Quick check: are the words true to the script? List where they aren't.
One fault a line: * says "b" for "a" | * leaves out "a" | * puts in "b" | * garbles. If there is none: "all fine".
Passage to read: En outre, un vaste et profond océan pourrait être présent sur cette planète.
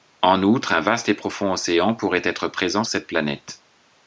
* leaves out "sur"